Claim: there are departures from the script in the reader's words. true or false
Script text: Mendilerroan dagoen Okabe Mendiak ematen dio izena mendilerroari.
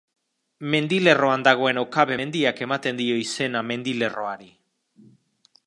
false